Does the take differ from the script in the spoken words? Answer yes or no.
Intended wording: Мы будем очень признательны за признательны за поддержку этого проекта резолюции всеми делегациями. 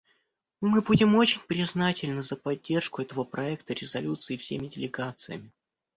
yes